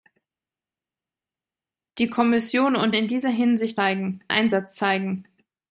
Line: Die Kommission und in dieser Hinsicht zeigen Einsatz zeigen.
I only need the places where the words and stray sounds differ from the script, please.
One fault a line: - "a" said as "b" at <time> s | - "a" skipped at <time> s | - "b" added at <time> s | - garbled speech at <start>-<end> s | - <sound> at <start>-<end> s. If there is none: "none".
none